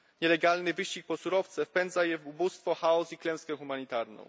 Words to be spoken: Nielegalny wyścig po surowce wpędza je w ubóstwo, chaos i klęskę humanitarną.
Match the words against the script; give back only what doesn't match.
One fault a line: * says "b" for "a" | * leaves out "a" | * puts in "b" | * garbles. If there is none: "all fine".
all fine